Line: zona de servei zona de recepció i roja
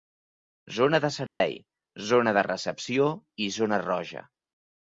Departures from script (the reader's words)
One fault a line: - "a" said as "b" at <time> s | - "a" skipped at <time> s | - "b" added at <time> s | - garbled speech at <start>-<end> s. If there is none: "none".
- "zona" added at 3.6 s